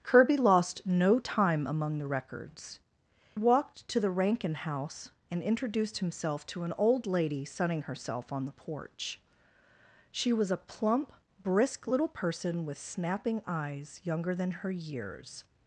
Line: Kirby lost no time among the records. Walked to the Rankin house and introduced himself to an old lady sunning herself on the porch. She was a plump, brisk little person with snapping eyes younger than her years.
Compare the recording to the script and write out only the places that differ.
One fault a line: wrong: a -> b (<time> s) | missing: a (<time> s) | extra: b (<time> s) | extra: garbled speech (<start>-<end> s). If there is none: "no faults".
no faults